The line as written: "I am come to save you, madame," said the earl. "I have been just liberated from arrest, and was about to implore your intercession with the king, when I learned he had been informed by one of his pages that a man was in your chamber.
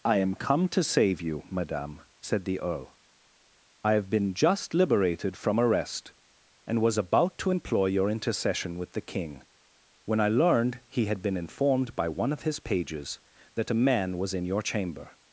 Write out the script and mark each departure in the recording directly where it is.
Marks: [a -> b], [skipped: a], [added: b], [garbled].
"I am come to save you, madame," said the earl. "I have been just liberated from arrest, and was about to [implore -> employ] your intercession with the king, when I learned he had been informed by one of his pages that a man was in your chamber.